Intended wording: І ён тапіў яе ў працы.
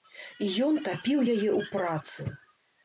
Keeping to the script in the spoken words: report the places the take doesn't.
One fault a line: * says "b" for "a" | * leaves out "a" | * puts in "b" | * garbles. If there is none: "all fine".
all fine